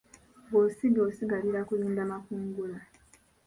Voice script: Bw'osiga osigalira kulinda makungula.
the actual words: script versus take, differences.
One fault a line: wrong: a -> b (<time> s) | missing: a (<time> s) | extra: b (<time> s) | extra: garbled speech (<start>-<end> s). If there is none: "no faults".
no faults